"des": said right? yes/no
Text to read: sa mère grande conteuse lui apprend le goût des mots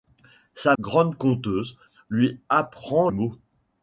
no